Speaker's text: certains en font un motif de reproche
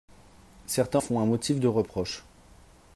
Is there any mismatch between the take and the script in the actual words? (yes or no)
yes